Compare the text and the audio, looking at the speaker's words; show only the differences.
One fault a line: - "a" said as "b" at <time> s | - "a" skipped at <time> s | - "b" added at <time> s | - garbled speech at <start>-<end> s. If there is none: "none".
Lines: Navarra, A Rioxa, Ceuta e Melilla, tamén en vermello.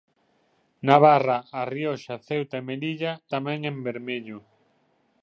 none